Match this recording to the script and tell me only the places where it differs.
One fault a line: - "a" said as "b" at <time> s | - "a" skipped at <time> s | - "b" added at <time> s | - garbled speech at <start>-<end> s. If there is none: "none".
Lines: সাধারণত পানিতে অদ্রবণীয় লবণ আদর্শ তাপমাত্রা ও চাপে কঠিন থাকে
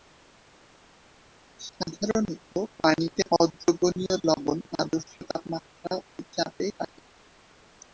- "কঠিন" skipped at 6.7 s